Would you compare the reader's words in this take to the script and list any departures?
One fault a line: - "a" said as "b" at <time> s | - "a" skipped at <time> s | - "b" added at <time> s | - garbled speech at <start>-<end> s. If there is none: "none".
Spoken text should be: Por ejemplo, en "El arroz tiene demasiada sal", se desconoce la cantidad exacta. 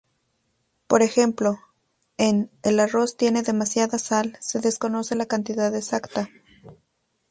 none